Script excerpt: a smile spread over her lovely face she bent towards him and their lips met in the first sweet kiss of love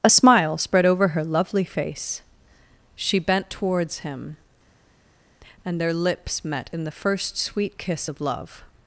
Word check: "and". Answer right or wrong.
right